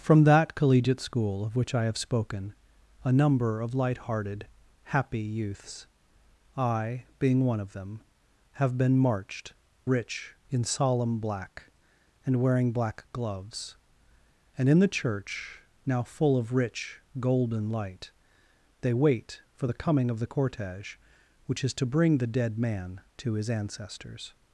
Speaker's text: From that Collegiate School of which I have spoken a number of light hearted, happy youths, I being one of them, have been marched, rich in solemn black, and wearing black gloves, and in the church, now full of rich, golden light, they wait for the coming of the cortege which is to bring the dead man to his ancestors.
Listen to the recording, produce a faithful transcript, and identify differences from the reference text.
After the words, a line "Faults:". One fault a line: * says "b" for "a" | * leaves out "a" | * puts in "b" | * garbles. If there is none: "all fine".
From that Collegiate School of which I have spoken a number of light hearted, happy youths, I being one of them, have been marched, rich in solemn black, and wearing black gloves, and in the church, now full of rich, golden light, they wait for the coming of the cortege which is to bring the dead man to his ancestors.
Faults:
all fine